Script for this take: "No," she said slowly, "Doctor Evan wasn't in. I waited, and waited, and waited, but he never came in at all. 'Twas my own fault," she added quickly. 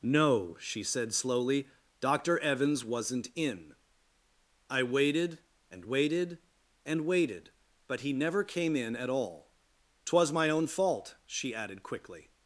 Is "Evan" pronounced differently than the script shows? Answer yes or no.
yes